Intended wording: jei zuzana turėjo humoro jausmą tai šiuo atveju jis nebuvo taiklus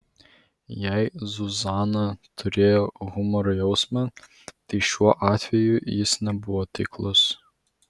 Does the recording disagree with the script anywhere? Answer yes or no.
no